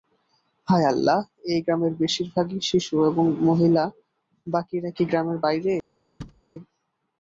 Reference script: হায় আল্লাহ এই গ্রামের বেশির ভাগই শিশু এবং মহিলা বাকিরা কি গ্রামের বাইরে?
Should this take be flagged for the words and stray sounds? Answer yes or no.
yes